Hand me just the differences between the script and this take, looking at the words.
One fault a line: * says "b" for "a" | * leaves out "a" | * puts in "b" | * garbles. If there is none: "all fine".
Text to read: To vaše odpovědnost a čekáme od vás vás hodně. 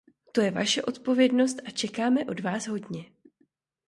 * puts in "je"
* leaves out "vás"